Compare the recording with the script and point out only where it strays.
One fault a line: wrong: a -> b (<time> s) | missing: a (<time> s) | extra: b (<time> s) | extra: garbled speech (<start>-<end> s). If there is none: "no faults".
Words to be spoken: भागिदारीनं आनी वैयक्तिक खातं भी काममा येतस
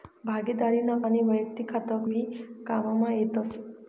no faults